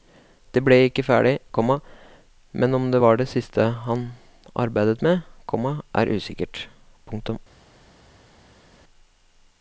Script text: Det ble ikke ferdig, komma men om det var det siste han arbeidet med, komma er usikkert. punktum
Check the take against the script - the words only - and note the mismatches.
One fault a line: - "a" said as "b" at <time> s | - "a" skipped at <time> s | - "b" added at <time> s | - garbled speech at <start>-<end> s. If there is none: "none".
none